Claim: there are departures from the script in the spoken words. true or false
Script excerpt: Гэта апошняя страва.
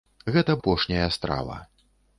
false